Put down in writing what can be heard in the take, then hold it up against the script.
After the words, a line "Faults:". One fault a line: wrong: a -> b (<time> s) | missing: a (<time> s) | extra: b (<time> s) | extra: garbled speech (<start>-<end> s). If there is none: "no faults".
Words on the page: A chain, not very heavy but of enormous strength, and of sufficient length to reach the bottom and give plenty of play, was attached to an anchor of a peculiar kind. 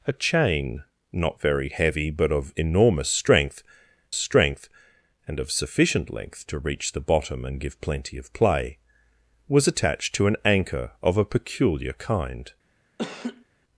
A chain, not very heavy but of enormous strength strength, and of sufficient length to reach the bottom and give plenty of play, was attached to an anchor of a peculiar kind.
Faults:
extra: strength (4.1 s)